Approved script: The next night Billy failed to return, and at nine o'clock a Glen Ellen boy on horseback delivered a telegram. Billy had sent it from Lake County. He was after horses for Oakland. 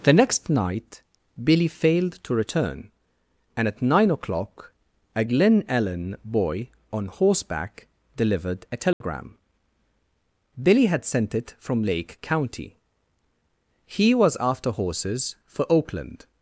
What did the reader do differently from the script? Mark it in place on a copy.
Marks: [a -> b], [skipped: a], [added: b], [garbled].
The next night Billy failed to return, and at nine o'clock a Glen Ellen boy on horseback delivered a telegram. Billy had sent it from Lake County. He was after horses for Oakland.